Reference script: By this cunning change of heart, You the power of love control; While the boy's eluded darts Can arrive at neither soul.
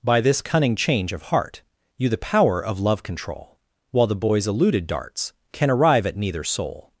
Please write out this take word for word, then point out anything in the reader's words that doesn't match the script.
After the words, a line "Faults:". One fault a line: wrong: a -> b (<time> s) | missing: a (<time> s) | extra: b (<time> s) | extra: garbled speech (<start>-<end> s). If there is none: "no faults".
By this cunning change of heart, You the power of love control; While the boy's eluded darts Can arrive at neither soul.
Faults:
no faults